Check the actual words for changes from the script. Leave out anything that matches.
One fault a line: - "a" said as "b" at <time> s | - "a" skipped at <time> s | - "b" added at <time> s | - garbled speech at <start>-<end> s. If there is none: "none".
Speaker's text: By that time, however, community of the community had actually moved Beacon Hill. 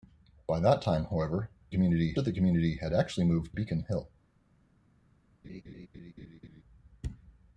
none